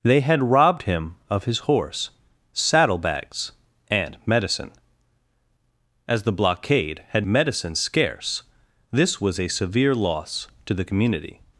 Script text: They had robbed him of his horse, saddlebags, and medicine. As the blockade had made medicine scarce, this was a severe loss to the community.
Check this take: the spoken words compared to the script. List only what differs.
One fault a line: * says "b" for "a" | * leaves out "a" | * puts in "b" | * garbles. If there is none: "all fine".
* leaves out "made"